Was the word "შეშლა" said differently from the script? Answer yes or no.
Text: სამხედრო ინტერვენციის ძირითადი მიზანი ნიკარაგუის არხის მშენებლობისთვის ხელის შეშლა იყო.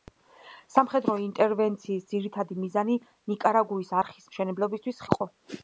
yes